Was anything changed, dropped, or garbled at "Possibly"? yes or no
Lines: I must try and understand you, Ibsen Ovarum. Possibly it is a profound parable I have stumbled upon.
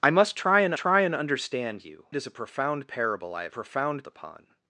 yes